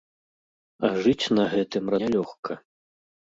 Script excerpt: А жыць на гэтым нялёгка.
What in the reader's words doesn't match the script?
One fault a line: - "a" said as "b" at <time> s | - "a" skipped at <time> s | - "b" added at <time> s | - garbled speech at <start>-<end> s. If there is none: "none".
none